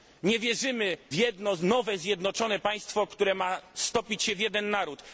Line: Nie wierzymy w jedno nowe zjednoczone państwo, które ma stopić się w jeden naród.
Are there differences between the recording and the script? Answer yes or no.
yes